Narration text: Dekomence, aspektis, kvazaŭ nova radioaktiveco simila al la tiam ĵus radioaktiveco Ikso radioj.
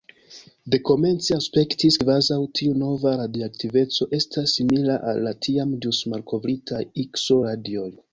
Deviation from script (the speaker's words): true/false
true